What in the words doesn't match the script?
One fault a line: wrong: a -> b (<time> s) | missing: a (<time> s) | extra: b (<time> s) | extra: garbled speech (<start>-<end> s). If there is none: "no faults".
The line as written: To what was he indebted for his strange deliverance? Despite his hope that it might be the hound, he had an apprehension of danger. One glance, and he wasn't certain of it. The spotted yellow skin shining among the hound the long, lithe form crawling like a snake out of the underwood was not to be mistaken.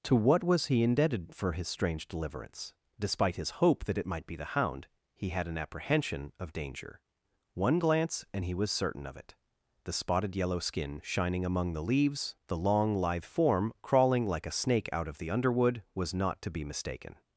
wrong: wasn't -> was (8.5 s)
wrong: hound -> leaves (11.8 s)